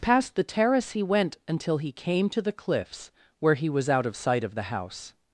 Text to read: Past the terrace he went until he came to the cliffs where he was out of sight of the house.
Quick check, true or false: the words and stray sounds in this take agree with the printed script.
true